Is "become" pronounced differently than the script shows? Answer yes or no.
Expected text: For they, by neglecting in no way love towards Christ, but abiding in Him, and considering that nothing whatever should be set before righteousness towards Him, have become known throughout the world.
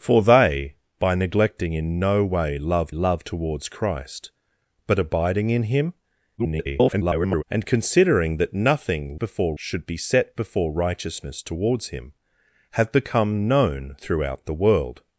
no